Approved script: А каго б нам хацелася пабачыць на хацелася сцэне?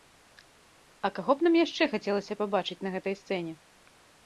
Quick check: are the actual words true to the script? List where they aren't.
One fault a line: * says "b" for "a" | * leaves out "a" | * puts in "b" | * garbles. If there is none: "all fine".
* puts in "яшчэ"
* says "гэтай" for "хацелася"